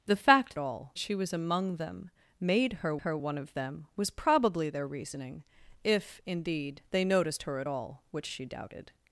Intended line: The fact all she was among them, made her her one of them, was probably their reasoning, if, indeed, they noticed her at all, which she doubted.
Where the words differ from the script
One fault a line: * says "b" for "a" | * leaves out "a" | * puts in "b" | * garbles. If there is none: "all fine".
all fine